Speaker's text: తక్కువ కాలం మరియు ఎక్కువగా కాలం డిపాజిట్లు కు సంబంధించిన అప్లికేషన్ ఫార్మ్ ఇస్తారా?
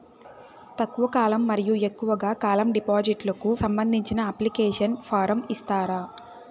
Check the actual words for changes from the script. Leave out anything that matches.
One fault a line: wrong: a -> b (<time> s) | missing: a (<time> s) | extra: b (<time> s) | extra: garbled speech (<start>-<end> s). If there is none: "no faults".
no faults